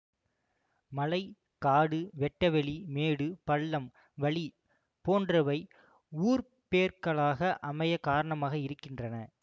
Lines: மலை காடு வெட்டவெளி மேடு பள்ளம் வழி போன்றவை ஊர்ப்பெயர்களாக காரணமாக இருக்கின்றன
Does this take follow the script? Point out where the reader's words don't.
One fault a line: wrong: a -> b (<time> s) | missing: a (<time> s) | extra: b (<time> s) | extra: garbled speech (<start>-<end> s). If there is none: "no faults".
extra: அமைய (7.6 s)